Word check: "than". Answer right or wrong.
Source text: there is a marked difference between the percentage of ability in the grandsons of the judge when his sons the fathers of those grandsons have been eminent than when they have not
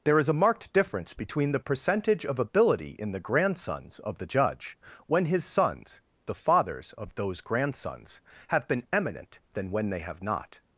right